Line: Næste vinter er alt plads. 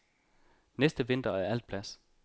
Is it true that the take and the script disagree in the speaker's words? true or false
false